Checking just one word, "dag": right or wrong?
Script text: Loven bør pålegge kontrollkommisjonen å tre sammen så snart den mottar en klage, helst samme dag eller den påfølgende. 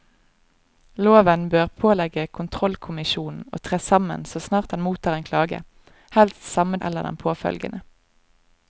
wrong